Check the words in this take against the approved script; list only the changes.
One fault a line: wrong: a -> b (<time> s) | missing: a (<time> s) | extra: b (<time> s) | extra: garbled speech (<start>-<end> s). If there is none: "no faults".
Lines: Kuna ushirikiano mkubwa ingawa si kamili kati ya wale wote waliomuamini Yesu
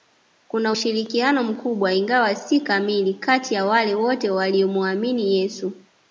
no faults